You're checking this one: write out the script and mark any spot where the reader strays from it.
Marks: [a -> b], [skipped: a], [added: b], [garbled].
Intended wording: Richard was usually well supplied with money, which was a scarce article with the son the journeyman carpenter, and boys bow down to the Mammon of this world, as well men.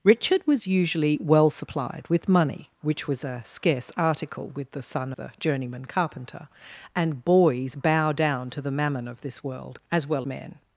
Richard was usually well supplied with money, which was a scarce article with the son the journeyman carpenter, and boys bow down to the Mammon of this world, as well men.